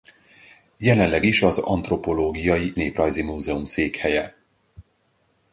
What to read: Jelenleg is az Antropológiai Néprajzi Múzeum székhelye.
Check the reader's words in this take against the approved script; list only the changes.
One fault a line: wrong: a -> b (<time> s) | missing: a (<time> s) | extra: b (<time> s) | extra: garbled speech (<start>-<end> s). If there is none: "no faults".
no faults